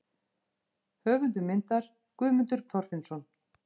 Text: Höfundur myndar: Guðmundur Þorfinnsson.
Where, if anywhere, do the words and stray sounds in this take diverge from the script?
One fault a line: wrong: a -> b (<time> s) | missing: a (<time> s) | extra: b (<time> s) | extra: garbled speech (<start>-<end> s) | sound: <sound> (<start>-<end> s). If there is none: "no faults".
no faults